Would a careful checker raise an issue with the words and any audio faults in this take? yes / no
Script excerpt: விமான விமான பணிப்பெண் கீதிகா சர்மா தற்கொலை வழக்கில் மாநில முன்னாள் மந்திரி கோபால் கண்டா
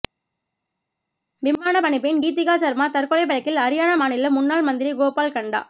yes